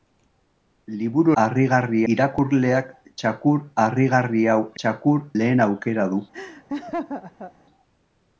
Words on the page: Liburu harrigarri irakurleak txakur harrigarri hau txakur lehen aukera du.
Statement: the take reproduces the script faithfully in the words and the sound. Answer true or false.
false